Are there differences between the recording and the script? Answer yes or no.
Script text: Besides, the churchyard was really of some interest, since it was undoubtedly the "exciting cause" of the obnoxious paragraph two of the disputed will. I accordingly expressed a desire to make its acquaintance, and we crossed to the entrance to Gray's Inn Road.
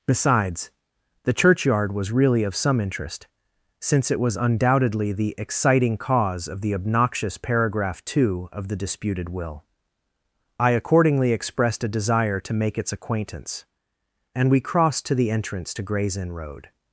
no